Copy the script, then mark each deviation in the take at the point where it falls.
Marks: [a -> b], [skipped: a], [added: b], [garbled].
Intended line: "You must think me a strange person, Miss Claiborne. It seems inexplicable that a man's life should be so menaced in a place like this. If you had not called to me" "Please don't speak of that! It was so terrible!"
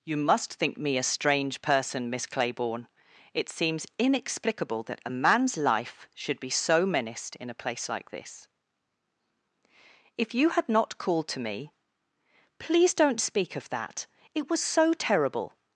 "You must think me a strange person, Miss Claiborne. It seems inexplicable that a man's life should be so menaced in a place like this. If you had not called to me" "Please don't speak of that! It was so terrible!"